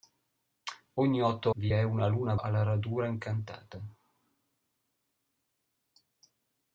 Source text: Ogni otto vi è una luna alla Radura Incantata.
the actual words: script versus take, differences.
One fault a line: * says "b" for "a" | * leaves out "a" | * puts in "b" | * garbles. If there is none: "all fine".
all fine